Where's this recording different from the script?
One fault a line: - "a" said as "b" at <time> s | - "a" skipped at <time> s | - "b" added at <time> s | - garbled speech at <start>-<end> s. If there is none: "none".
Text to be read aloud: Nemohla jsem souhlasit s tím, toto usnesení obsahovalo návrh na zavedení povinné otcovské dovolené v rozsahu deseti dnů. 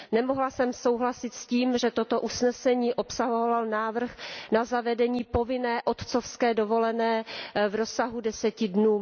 - "že" added at 1.8 s